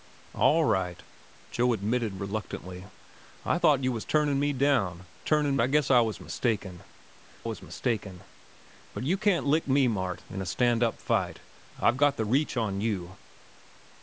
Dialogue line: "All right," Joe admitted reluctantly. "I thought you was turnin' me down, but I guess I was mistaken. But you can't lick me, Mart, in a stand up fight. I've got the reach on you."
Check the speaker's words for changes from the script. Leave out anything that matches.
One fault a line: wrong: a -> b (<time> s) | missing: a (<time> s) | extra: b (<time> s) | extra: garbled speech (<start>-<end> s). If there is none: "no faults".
wrong: but -> turnin (5.2 s)
extra: was mistaken (7.4 s)